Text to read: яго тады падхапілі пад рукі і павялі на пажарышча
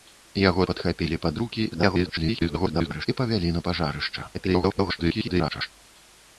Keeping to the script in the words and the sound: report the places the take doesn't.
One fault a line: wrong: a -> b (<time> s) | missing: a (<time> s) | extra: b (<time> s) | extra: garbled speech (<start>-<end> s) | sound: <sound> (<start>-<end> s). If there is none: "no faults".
missing: тады (0.7 s)
extra: garbled speech (1.7-3.1 s)
extra: garbled speech (4.3-5.7 s)